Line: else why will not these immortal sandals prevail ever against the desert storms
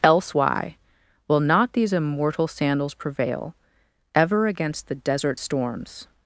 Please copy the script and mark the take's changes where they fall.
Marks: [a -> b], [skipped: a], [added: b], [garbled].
else why will not these immortal sandals prevail ever against the desert storms